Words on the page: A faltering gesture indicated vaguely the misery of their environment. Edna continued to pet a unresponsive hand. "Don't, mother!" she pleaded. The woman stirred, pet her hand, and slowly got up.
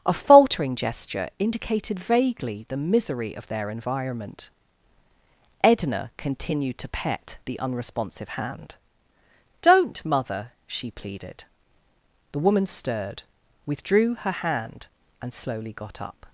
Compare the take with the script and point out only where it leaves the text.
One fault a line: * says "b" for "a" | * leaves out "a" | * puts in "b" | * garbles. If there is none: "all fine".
* says "the" for "a"
* says "withdrew" for "pet"